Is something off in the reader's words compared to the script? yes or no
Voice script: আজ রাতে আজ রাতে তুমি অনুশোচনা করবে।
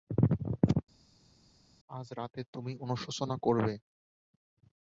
yes